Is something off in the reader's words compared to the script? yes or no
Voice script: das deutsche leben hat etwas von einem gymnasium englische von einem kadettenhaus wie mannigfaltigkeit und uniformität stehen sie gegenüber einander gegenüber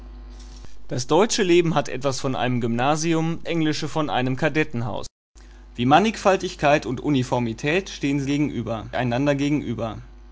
no